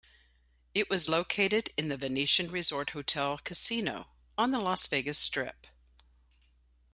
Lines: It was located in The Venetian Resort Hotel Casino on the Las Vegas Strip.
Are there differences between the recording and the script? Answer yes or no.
no